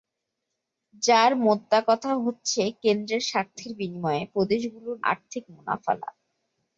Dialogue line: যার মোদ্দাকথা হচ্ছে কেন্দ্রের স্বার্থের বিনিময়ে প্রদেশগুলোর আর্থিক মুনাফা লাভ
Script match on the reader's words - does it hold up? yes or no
yes